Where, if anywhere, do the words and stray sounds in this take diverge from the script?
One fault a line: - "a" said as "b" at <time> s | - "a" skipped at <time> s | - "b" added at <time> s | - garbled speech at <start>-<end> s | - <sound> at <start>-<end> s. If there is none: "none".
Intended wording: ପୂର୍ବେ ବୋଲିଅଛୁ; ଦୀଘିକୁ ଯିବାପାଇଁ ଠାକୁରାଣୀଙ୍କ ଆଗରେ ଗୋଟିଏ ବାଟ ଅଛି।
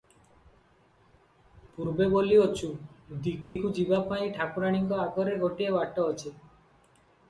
- dropout at 3.4-3.6 s